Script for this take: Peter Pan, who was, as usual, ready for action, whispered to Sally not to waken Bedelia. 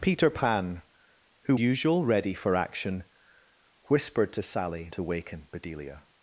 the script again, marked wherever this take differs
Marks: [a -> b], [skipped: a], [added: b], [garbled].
Peter Pan, who [skipped: was, as] usual, ready for action, whispered to Sally [skipped: not] to waken Bedelia.